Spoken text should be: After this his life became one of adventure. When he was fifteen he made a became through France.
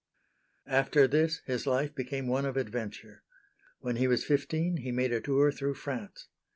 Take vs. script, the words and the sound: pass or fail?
fail